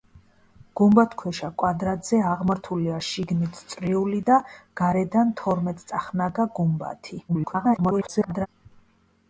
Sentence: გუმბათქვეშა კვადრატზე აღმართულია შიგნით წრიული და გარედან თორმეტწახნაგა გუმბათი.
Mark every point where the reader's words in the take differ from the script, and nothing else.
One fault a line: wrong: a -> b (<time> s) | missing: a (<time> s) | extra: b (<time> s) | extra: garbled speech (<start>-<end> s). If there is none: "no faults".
extra: garbled speech (7.3-8.5 s)